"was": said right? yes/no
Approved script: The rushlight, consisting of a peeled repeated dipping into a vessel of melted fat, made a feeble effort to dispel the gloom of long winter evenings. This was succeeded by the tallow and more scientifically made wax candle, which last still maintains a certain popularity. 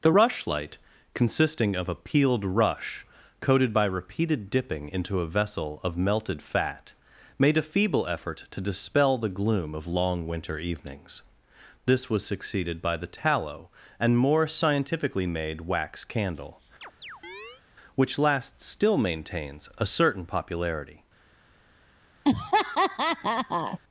yes